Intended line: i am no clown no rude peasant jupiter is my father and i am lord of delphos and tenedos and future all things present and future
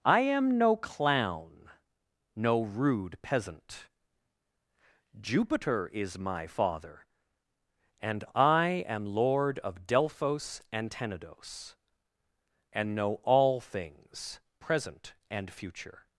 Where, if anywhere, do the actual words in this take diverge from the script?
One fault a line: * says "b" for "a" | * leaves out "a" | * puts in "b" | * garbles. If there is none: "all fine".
* says "know" for "future"